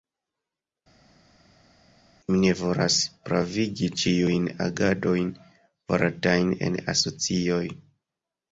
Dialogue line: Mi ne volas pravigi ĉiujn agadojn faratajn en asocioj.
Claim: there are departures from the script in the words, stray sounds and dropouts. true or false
false